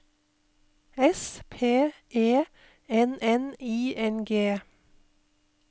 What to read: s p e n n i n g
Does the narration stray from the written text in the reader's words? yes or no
no